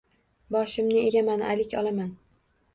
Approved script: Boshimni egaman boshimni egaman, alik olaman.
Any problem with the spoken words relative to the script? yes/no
yes